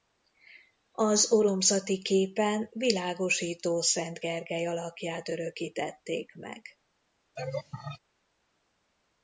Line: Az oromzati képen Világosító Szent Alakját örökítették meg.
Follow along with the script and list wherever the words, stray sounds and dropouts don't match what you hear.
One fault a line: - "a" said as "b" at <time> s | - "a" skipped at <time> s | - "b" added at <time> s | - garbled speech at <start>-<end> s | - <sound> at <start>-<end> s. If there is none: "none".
- "Gergely" added at 4.2 s
- laugh at 7.4-8.0 s